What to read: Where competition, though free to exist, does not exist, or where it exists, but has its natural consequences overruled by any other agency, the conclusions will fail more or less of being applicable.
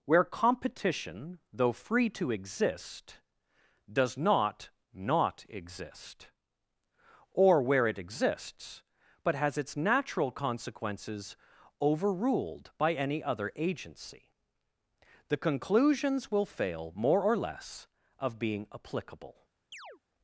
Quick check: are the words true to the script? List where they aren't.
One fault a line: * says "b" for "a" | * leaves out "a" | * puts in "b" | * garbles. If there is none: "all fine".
* puts in "not"